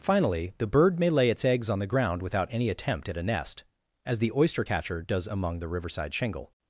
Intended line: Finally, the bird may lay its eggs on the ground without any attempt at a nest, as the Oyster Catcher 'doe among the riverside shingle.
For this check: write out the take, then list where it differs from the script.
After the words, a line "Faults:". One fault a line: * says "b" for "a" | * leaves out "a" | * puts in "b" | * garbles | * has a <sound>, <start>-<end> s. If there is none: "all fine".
Finally, the bird may lay its eggs on the ground without any attempt at a nest, as the Oyster Catcher 'does among the riverside shingle.
Faults:
* says "does" for "doe"